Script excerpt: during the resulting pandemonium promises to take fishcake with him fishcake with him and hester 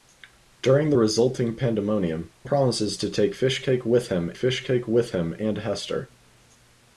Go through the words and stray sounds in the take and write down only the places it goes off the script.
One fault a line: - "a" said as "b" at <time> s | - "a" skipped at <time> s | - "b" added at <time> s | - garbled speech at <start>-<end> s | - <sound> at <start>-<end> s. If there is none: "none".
none